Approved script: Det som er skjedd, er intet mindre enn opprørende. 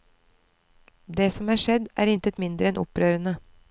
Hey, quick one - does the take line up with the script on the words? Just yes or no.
yes